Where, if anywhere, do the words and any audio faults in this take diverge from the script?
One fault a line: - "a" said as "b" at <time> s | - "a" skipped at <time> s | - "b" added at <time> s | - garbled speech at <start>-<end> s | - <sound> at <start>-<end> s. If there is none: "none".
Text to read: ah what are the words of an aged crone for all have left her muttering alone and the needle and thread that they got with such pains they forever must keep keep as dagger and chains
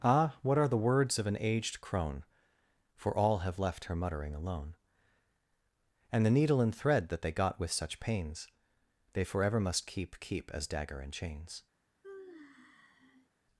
- sigh at 12.0-13.3 s